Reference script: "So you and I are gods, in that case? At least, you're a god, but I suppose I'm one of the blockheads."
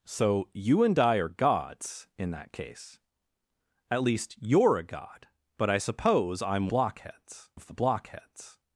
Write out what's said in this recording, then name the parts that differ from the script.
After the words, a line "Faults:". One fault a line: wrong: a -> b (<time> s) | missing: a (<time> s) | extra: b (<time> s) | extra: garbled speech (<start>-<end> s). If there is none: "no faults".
"So you and I are gods, in that case? At least, you're a god, but I suppose I'm blockheads of the blockheads."
Faults:
wrong: one -> blockheads (6.7 s)